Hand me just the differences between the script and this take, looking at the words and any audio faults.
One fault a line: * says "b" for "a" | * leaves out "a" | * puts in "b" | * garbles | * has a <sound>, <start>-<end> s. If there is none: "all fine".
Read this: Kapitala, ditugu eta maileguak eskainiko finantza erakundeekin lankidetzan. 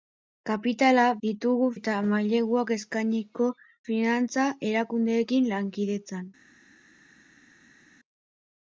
all fine